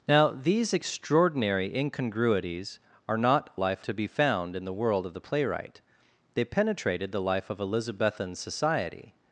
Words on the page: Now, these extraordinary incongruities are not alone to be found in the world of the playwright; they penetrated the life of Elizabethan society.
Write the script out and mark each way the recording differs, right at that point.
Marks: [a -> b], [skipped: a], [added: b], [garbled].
Now, these extraordinary incongruities are not [alone -> life] to be found in the world of the playwright; they penetrated the life of Elizabethan society.